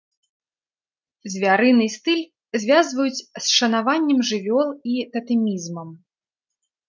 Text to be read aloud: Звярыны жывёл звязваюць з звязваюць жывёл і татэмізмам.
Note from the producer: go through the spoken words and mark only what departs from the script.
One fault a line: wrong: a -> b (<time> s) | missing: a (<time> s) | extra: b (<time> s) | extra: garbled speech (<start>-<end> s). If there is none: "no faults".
wrong: жывёл -> стыль (1.9 s)
wrong: звязваюць -> шанаваннем (3.6 s)